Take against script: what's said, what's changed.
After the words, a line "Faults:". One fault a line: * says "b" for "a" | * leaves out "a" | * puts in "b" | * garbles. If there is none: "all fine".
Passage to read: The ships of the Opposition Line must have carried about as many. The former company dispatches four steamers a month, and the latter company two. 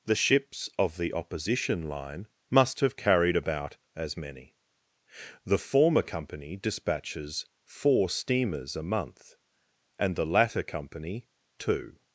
The ships of the Opposition Line must have carried about as many. The former company dispatches four steamers a month, and the latter company two.
Faults:
all fine